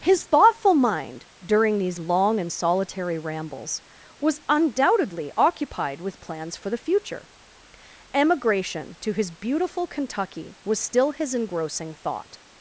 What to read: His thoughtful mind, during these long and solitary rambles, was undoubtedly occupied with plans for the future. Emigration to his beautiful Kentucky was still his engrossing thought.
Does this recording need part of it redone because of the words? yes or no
no